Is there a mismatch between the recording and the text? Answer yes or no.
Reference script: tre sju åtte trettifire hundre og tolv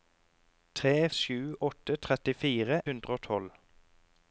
no